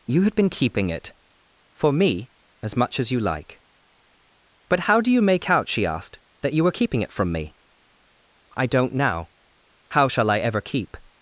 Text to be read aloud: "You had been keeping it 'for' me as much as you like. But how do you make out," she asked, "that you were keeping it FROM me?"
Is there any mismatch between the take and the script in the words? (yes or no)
yes